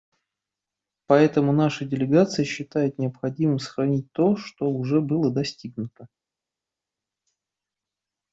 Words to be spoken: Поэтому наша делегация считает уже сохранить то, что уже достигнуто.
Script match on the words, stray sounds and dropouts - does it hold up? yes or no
no